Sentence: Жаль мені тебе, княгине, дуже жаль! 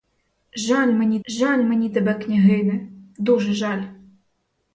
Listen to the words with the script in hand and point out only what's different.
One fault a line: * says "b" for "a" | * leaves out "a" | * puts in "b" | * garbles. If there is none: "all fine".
* puts in "жаль мені"